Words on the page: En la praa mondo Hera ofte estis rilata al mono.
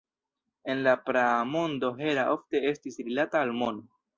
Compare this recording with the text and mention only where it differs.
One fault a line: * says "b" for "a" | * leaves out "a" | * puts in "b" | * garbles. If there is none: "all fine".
all fine